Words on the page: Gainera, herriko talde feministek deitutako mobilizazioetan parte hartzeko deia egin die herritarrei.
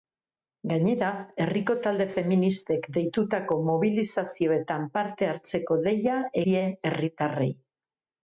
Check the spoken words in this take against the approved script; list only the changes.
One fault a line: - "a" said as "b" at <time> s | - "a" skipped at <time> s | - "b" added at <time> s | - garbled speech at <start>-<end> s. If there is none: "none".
- "egin" skipped at 6.2 s